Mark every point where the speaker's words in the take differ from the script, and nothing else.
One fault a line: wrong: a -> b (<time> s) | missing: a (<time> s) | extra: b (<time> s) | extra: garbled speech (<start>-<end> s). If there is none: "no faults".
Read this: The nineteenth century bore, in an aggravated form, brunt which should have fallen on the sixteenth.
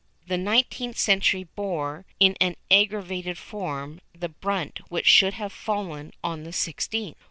extra: the (4.2 s)